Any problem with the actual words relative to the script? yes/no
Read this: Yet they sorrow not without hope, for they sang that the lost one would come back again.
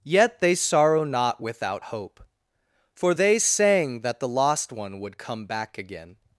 no